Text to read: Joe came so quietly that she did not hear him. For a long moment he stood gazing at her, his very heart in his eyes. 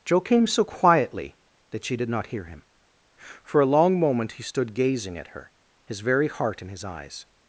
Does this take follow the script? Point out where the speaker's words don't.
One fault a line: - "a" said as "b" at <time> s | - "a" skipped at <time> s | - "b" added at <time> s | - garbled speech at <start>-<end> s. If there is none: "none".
none